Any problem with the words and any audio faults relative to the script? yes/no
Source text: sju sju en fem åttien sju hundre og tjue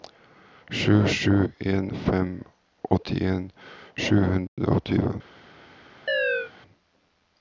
yes